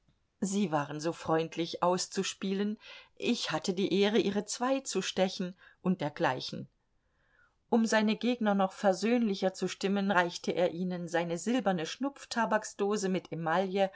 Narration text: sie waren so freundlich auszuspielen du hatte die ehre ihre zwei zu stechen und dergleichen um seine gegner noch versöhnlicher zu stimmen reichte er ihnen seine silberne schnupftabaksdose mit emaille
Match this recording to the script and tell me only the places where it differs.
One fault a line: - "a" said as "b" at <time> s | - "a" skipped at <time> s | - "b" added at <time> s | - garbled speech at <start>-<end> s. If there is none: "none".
- "du" said as "ich" at 3.1 s